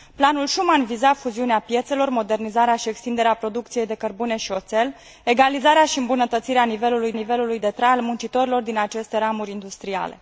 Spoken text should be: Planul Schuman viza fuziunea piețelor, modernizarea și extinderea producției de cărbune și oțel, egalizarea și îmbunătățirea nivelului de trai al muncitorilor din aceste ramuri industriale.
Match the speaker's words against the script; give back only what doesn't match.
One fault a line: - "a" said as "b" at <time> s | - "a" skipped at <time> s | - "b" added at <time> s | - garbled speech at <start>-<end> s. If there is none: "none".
- "nivelului" added at 7.1 s